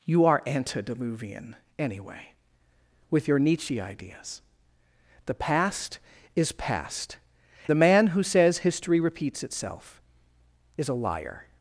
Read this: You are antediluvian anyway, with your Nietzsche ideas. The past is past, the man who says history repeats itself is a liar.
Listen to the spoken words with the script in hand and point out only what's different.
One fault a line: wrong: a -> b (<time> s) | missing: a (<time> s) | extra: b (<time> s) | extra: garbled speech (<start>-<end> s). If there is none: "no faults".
no faults